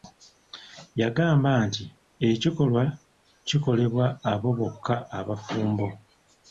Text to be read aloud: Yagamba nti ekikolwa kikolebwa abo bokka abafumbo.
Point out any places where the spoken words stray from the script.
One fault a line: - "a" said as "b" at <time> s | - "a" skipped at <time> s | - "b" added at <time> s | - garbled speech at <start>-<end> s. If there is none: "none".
none